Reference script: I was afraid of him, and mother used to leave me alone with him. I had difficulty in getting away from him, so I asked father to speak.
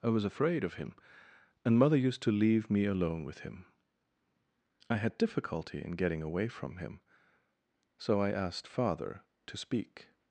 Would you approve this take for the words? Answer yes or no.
yes